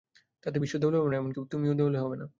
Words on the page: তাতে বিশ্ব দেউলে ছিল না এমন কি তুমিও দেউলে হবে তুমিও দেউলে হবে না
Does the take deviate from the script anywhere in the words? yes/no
yes